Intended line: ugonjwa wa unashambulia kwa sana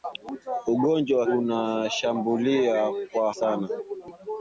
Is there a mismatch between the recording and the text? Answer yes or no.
no